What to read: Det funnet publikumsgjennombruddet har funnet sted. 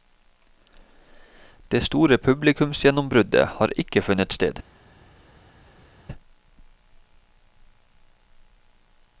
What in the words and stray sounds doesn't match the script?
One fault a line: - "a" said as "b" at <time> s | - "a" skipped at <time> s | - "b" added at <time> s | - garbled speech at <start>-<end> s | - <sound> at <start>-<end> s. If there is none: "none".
- "funnet" said as "store" at 1.8 s
- "ikke" added at 3.8 s